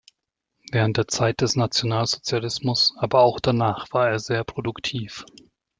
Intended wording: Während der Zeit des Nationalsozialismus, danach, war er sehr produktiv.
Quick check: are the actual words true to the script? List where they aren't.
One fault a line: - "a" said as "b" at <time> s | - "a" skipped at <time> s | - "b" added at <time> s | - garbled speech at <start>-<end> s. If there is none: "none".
- "aber auch" added at 3.0 s